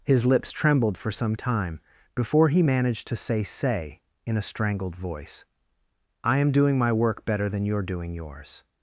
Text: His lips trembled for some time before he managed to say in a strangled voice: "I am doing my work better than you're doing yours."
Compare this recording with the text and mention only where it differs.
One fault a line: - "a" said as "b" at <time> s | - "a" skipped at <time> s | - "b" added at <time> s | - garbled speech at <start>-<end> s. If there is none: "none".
- "say" added at 3.4 s